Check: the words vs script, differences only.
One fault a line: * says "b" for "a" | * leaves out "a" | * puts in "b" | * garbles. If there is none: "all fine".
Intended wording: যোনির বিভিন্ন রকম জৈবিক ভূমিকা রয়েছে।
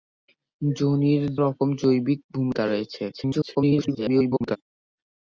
* leaves out "বিভিন্ন"
* garbles